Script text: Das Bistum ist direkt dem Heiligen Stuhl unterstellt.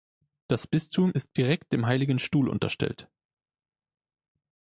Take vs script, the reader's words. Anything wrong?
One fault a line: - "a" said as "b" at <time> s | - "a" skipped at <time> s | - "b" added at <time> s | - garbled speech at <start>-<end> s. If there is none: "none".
none